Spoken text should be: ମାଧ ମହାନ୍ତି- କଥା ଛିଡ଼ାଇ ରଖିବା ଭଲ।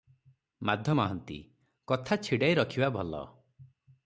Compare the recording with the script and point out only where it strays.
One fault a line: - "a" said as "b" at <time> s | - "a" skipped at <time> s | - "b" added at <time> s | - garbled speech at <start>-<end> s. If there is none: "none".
none